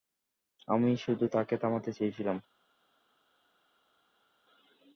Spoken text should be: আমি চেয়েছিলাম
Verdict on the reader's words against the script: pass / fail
fail